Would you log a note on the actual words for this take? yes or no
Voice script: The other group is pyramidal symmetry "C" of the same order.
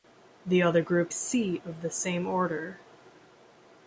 yes